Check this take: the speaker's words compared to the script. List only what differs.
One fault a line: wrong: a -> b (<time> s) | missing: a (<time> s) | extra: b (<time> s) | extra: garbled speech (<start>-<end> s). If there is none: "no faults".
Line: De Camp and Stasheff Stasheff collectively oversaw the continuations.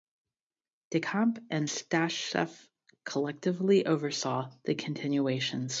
missing: Stasheff (2.7 s)